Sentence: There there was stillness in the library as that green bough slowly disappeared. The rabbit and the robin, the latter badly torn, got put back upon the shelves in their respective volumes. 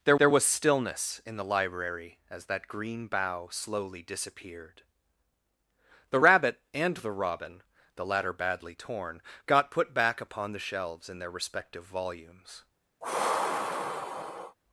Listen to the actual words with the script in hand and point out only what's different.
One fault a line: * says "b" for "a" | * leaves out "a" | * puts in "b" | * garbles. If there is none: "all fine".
all fine